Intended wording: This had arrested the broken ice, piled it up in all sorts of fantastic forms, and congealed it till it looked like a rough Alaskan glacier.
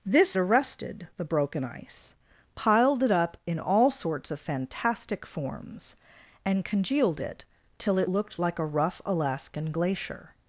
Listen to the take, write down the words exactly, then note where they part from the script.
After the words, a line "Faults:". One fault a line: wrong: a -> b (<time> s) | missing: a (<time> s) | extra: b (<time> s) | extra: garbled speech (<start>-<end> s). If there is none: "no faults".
This arrested the broken ice, piled it up in all sorts of fantastic forms, and congealed it till it looked like a rough Alaskan glacier.
Faults:
missing: had (0.4 s)